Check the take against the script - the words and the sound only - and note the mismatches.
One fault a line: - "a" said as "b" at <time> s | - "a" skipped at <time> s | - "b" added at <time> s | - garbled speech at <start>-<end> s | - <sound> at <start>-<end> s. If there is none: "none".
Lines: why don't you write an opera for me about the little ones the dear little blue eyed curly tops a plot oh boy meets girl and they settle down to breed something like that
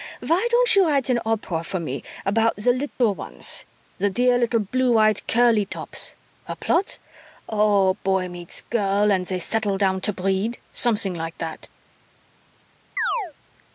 - dropout at 2.9-3.0 s
- chirp at 13.0-13.3 s